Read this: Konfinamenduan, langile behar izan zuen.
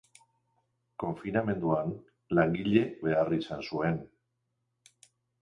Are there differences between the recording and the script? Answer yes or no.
no